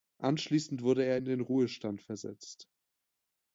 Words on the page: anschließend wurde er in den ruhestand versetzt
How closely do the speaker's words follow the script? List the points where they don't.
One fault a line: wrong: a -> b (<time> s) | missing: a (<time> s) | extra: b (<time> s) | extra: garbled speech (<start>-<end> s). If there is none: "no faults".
no faults